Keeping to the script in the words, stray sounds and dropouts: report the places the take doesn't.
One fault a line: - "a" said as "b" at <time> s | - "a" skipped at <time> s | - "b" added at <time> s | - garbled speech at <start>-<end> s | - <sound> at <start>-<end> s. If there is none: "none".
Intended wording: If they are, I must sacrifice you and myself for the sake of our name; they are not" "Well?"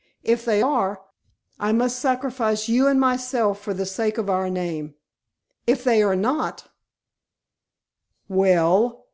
- "if" added at 5.7 s